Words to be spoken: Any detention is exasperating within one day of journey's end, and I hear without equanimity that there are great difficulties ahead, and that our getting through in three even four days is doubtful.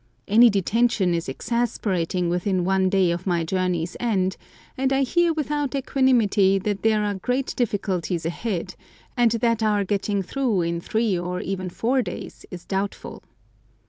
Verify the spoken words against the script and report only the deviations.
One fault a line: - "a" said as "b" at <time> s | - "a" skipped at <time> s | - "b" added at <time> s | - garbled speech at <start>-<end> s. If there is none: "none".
- "my" added at 3.3 s
- "or" added at 11.2 s